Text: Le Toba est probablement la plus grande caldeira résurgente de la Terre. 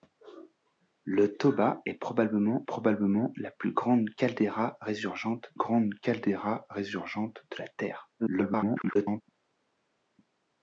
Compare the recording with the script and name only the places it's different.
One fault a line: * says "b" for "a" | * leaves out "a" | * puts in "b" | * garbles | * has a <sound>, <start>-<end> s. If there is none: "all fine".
* puts in "probablement"
* puts in "grande caldeira résurgente"
* garbles